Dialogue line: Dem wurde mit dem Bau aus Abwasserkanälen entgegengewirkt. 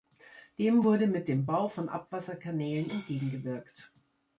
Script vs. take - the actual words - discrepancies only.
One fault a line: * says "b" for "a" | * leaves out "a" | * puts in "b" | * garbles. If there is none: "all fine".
* says "von" for "aus"